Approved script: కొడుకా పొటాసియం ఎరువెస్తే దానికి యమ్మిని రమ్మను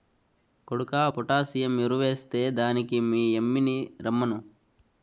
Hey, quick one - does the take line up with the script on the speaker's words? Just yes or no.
no